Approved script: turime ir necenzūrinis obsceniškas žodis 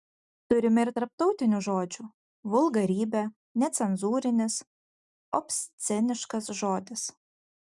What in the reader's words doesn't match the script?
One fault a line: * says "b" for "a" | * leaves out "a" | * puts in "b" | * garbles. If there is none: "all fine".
* puts in "tarptautinių žodžių vulgarybė"